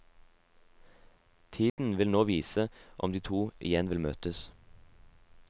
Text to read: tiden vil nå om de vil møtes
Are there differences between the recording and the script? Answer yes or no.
yes